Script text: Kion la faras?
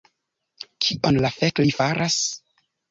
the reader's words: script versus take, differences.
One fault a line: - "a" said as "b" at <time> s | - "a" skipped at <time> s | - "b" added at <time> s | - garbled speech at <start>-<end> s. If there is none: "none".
- "fek li" added at 1.4 s